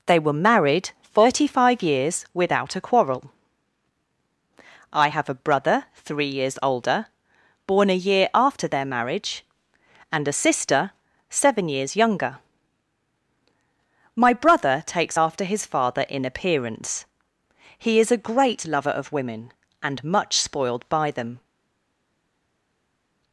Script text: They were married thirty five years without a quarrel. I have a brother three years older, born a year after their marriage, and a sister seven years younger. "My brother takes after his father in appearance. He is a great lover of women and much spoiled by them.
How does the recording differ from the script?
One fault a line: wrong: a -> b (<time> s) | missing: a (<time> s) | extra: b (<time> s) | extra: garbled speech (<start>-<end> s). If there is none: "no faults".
no faults